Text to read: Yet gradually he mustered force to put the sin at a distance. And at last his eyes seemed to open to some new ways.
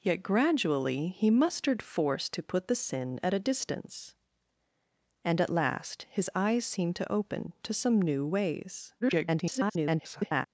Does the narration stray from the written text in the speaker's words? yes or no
yes